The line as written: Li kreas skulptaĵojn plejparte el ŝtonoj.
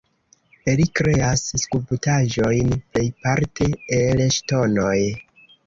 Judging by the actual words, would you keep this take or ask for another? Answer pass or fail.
pass